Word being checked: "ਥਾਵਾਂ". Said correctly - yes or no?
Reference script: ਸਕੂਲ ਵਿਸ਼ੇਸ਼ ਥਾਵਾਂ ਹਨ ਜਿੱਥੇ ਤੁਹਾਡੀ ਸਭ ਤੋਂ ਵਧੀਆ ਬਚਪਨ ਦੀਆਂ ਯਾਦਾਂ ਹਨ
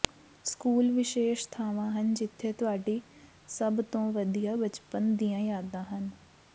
yes